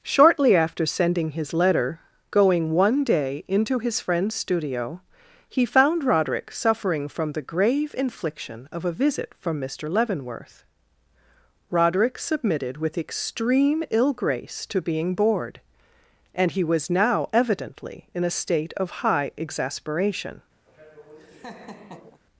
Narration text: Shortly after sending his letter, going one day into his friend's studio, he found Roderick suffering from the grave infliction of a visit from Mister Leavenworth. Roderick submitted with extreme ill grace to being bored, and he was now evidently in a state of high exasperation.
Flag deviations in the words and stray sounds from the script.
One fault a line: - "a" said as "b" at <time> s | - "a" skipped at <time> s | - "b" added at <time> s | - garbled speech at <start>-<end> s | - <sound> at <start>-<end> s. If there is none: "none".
- laugh at 20.7-22.2 s